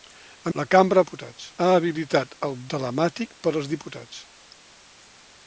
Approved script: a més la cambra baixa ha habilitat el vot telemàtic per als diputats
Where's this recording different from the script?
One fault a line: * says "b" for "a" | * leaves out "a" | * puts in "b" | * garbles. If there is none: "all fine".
* leaves out "més"
* says "diputats" for "baixa"
* leaves out "vot"